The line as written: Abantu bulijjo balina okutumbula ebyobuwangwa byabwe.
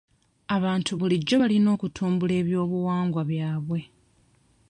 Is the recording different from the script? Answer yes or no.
no